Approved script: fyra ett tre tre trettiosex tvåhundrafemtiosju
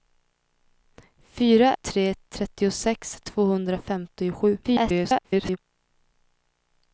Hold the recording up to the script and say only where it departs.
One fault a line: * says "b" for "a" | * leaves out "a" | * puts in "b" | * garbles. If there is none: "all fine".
* leaves out "ett tre"
* garbles